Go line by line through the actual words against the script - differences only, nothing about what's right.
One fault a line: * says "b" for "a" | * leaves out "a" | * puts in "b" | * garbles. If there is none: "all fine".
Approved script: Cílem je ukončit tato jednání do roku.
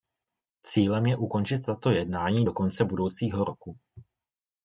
* puts in "konce budoucího"